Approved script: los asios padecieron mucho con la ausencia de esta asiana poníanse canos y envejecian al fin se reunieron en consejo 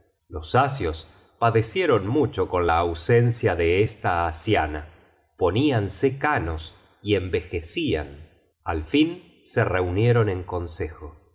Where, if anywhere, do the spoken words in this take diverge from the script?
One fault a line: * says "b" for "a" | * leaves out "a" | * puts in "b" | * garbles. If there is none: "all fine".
all fine